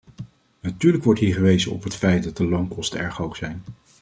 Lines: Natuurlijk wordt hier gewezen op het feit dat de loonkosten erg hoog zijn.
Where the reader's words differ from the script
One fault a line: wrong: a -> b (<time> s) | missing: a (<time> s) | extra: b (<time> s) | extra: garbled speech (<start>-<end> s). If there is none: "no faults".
no faults